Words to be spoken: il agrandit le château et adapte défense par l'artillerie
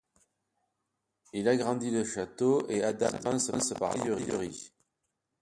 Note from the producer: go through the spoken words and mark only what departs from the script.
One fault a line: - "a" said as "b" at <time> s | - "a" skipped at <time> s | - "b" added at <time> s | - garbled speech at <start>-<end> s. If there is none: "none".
none